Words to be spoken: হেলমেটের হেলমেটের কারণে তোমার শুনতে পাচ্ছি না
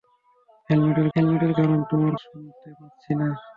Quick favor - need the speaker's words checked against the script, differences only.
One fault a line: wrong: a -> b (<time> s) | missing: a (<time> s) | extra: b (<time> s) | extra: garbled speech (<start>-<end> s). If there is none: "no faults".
no faults